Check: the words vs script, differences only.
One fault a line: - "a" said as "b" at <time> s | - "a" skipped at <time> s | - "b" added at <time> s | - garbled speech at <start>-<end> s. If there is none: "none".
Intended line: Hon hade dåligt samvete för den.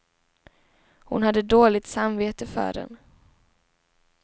none